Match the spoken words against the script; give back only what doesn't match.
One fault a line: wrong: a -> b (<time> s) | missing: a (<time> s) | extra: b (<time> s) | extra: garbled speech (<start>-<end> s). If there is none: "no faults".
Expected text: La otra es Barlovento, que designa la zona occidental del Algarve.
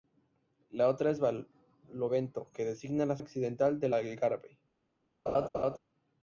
missing: zona (3.2 s)